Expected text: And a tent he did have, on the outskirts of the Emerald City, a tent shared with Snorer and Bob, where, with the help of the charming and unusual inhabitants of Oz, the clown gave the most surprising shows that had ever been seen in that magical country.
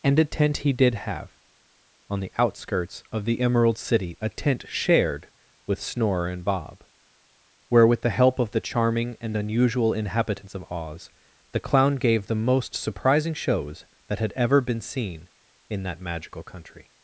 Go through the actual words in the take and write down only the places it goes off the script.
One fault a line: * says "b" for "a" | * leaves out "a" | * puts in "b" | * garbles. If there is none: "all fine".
all fine